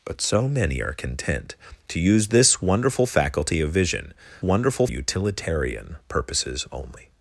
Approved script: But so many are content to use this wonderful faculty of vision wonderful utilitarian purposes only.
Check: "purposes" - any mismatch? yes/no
no